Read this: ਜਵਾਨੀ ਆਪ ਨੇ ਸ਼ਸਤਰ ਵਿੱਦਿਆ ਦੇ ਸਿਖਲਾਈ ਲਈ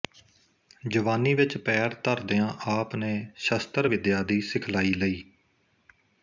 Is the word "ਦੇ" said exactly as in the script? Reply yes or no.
no